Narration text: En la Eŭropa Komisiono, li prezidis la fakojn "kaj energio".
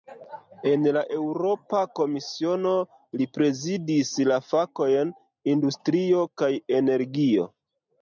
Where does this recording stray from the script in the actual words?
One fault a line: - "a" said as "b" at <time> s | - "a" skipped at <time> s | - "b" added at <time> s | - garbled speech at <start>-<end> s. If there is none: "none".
- "industrio" added at 5.6 s